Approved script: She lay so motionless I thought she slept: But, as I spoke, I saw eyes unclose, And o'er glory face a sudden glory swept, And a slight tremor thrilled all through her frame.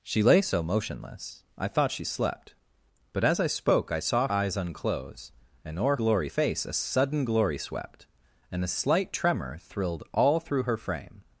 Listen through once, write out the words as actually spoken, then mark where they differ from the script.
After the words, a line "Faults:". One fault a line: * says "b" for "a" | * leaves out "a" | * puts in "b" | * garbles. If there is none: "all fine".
She lay so motionless I thought she slept: But, as I spoke, I saw eyes unclose, And o'er glory face a sudden glory swept, And a slight tremor thrilled all through her frame.
Faults:
all fine